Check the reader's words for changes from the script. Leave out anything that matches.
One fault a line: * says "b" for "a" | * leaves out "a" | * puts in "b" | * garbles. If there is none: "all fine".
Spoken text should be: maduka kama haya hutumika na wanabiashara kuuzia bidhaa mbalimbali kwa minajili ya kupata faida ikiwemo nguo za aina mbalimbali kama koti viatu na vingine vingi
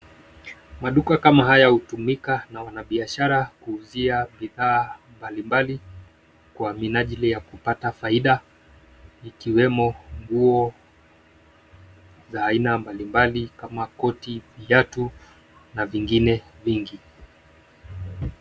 all fine